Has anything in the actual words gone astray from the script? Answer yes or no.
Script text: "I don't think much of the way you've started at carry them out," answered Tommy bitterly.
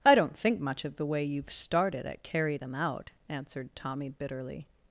no